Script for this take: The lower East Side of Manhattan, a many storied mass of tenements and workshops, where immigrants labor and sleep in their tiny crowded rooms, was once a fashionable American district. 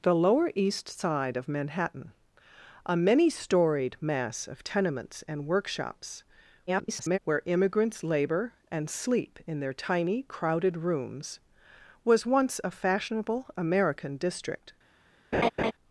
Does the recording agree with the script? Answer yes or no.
no